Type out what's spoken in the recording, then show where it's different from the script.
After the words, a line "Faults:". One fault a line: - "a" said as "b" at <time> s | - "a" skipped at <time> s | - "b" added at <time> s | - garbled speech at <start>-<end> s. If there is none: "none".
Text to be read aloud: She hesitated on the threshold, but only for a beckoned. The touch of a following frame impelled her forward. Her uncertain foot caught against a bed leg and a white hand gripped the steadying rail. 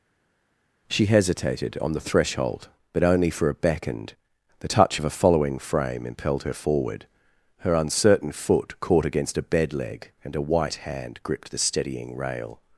She hesitated on the threshold, but only for a beckoned. The touch of a following frame impelled her forward. Her uncertain foot caught against a bed leg and a white hand gripped the steadying rail.
Faults:
none